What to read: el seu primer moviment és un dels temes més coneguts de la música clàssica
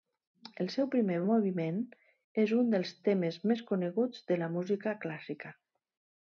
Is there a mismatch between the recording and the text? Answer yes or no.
no